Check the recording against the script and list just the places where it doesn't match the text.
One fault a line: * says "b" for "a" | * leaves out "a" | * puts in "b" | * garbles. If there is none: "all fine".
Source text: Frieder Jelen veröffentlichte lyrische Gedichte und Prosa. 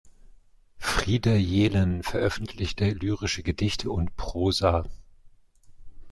all fine